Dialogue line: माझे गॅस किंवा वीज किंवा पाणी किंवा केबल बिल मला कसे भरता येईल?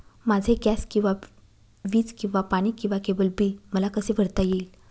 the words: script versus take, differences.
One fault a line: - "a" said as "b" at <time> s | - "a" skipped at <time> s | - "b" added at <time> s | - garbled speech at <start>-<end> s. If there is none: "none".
none